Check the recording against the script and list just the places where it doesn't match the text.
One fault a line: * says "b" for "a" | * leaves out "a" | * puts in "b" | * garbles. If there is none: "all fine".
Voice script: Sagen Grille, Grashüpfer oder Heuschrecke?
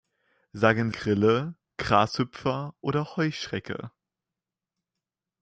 all fine